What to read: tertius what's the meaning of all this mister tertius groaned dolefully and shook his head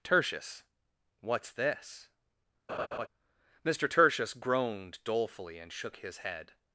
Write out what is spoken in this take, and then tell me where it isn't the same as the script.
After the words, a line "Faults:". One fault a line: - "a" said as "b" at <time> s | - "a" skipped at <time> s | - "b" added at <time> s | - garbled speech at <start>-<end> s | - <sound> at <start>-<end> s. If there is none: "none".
tertius what's this mister tertius groaned dolefully and shook his head
Faults:
- "the meaning of all" skipped at 1.5 s
- laugh at 2.7-3.1 s